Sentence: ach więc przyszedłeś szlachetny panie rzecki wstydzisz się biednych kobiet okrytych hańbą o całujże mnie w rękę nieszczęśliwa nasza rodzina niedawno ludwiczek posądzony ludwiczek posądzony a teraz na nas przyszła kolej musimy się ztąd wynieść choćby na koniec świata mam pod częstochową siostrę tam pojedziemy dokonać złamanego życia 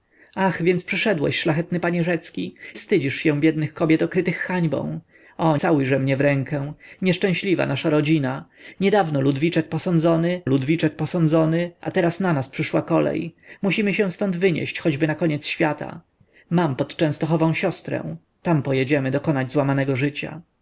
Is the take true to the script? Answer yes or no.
yes